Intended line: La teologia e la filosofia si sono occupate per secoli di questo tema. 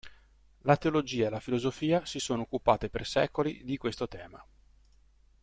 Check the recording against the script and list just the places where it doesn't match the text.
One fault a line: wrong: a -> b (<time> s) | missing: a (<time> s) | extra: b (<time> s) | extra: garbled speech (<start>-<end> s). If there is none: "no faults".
no faults